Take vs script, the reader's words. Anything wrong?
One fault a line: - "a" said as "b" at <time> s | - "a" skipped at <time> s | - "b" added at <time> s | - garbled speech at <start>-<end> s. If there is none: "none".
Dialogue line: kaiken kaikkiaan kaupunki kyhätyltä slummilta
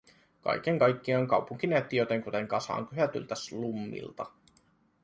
- "näytti jotenkuten kasaan" added at 1.7 s